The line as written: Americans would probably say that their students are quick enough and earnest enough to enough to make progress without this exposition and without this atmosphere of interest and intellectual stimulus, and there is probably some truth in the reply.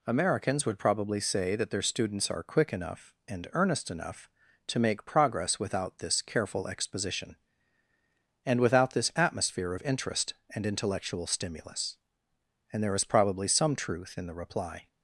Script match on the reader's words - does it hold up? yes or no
no